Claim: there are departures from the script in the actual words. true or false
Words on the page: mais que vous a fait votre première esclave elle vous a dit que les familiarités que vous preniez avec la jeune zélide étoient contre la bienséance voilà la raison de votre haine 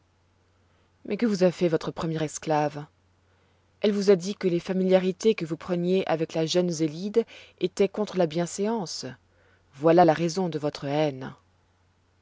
false